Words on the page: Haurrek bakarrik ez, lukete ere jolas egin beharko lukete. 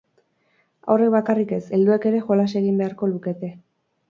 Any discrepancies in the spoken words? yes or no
yes